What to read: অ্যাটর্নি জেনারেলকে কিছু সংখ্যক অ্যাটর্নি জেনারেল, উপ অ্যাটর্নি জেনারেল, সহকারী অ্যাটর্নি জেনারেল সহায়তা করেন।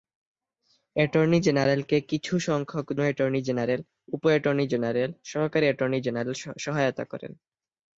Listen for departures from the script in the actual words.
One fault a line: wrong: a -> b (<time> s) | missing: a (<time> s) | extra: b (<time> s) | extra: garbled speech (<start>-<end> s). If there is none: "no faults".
no faults